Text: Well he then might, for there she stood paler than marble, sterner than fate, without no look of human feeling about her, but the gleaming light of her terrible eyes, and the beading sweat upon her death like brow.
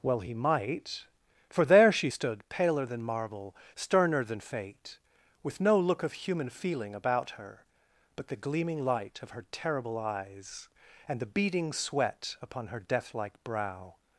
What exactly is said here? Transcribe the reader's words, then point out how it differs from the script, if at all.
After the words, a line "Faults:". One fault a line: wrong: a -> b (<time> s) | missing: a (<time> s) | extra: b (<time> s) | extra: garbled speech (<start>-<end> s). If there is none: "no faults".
Well he might, for there she stood paler than marble, sterner than fate, with no look of human feeling about her, but the gleaming light of her terrible eyes, and the beading sweat upon her death like brow.
Faults:
missing: then (0.3 s)
wrong: without -> with (5.4 s)